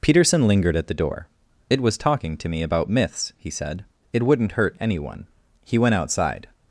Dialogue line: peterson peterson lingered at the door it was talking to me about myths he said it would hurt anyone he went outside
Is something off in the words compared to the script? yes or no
yes